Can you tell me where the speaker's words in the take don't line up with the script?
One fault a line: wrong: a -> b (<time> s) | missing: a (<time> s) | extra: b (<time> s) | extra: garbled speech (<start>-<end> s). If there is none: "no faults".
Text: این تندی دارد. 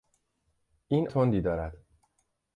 no faults